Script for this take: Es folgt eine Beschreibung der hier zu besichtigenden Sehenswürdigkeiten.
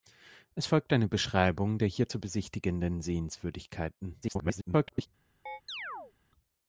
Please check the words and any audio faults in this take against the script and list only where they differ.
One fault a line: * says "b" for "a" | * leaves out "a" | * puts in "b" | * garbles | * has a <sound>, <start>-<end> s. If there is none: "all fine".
* garbles
* has a chirp, 5.5-6.1 s